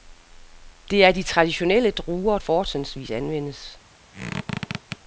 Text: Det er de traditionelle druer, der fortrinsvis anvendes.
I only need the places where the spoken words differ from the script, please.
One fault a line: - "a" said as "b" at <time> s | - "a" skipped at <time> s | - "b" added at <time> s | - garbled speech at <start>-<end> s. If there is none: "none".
- "der" skipped at 2.4 s